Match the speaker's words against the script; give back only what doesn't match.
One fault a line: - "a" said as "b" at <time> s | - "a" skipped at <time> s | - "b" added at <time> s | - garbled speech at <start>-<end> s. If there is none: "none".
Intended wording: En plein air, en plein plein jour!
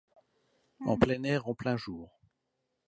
- "plein" skipped at 1.8 s